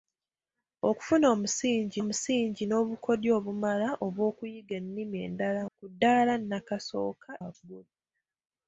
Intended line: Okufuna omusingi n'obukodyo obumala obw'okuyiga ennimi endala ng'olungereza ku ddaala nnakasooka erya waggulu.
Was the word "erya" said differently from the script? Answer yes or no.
yes